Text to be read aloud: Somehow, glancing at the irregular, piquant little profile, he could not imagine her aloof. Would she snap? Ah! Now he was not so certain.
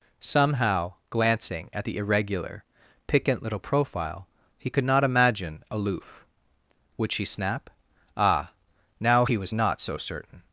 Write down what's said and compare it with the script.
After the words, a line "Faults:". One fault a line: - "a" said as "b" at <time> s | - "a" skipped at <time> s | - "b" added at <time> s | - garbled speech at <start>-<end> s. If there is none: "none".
Somehow, glancing at the irregular, piquant little profile, he could not imagine aloof. Would she snap? Ah! Now he was not so certain.
Faults:
- "her" skipped at 5.6 s